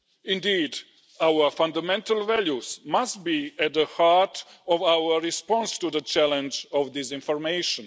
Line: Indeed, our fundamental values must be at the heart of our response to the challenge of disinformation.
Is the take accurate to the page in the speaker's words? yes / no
yes